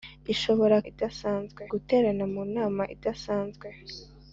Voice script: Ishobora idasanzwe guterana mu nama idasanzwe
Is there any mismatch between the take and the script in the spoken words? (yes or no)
no